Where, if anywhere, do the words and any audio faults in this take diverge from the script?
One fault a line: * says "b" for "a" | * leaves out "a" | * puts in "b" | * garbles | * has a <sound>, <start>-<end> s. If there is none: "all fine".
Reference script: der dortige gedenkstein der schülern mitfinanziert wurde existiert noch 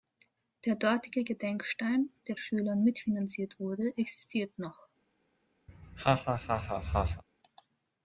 * has a laugh, 5.7-7.2 s